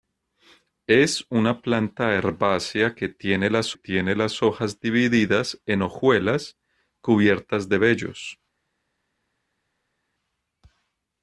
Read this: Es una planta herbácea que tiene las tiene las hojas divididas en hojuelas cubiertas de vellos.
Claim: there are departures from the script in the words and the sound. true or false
false